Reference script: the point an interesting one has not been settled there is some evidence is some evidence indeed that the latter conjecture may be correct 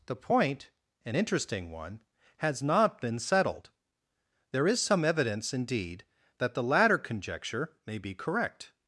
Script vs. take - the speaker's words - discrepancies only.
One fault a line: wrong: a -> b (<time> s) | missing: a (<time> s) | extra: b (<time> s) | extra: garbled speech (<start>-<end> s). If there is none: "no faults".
missing: is some evidence (5.5 s)